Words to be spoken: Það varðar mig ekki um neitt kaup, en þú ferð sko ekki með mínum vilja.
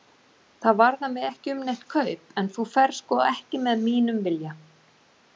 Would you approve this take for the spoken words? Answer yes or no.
yes